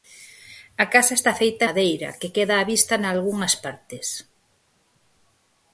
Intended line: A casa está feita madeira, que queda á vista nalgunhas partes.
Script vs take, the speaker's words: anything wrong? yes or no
no